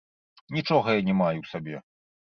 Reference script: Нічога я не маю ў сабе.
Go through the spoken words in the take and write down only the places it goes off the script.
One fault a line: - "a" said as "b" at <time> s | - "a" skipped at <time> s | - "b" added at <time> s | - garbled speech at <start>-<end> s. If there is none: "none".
none